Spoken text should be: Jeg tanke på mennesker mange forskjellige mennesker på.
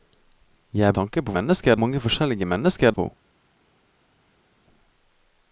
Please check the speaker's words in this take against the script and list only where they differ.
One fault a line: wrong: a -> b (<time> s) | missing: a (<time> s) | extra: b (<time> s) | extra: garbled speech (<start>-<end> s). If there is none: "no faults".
no faults